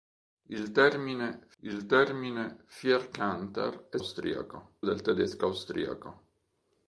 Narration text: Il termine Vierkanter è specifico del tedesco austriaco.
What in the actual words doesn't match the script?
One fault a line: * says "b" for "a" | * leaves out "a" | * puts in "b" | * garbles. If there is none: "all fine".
* puts in "il termine"
* says "austriaco" for "specifico"